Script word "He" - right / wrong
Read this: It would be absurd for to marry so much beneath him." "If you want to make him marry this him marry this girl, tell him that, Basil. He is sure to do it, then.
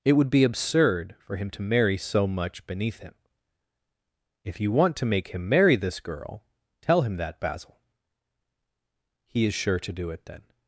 right